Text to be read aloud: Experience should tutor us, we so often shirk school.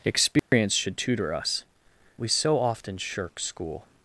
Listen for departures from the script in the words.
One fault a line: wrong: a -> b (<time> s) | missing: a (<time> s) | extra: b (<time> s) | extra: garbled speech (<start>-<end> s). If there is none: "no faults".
no faults